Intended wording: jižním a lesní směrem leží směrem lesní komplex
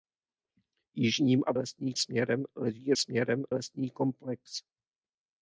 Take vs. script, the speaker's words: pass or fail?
pass